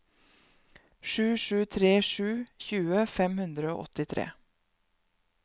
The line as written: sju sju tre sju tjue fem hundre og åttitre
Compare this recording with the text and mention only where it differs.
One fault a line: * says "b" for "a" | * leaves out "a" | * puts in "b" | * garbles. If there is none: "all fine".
all fine